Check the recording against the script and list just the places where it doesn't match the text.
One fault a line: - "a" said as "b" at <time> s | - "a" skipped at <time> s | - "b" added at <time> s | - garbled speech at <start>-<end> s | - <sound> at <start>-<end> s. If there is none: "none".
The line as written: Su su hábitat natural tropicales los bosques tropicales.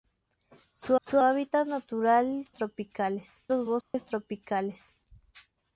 - dropout at 3.8-3.9 s